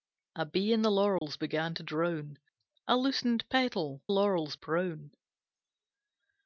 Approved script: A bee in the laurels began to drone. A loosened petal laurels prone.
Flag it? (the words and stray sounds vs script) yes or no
yes